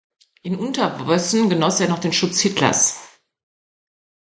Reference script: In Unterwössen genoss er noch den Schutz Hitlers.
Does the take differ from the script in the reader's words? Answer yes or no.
no